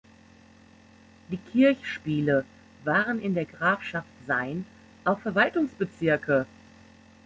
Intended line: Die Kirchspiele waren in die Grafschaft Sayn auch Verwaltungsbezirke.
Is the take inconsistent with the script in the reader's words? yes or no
yes